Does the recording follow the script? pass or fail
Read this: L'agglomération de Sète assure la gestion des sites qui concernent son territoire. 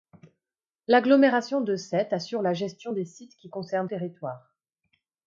fail